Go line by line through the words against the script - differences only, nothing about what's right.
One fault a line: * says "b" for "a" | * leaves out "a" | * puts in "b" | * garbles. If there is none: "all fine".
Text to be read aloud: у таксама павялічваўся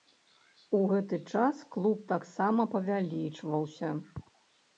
* puts in "гэты час клуб"